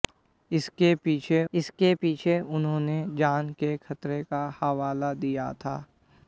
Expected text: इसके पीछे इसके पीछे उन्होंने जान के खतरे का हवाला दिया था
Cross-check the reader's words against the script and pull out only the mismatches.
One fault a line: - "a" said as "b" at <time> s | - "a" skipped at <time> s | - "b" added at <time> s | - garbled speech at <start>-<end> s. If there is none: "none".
none